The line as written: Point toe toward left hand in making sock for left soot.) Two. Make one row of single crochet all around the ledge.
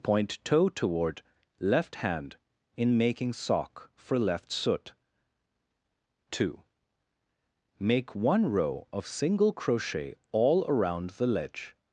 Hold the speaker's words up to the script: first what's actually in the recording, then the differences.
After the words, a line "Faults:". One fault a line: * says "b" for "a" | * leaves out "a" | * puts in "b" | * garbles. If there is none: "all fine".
Point toe toward left hand in making sock for left soot.) Two. Make one row of single crochet all around the ledge.
Faults:
all fine